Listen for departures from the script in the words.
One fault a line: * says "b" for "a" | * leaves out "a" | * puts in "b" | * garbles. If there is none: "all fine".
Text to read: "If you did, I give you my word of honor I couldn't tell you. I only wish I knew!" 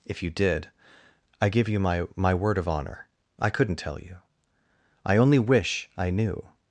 * puts in "my"